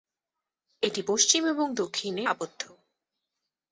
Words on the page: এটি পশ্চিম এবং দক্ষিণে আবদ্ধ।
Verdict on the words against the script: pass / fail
pass